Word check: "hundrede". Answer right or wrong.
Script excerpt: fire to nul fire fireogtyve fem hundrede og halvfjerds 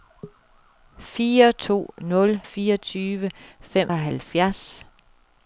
wrong